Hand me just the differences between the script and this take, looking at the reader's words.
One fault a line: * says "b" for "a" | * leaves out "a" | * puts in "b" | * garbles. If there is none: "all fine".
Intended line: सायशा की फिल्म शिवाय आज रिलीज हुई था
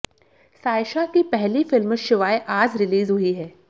* puts in "पहली"
* says "है" for "था"